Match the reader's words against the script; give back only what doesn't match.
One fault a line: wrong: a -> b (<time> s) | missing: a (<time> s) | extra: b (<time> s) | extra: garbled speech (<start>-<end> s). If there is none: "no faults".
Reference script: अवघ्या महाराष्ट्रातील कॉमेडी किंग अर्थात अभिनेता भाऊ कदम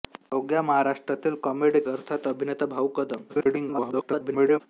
missing: किंग (1.8 s)
extra: garbled speech (3.3-4.6 s)